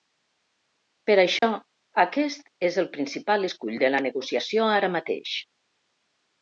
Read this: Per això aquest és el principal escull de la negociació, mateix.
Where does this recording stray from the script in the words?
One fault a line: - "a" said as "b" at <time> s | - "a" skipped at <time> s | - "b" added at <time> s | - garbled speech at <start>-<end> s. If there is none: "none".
- "ara" added at 4.8 s